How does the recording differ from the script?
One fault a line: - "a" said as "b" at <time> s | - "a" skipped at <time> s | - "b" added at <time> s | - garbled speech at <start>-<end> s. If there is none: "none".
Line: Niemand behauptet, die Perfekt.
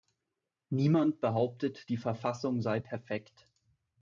- "Verfassung sei" added at 2.0 s